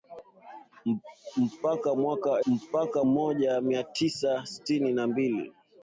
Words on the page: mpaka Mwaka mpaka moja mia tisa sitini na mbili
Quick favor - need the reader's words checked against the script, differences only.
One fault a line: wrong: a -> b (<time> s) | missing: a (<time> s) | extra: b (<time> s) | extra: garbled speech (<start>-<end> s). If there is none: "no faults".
no faults